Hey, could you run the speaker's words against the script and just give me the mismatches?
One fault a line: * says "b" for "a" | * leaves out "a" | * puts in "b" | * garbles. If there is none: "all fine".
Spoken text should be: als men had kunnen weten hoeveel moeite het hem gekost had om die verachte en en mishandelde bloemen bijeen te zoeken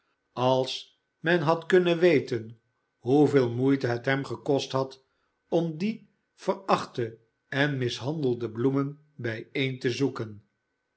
* leaves out "en"